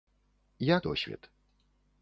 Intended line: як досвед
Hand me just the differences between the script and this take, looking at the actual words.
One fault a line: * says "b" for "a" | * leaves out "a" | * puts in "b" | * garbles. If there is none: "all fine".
all fine